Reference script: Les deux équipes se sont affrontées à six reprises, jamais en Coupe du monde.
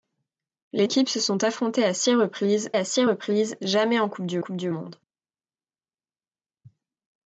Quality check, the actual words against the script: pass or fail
fail